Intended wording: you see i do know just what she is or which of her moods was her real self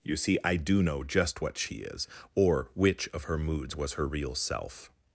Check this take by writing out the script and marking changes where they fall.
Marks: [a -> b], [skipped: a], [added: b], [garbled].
you see i do know just what she is or which of her moods was her real self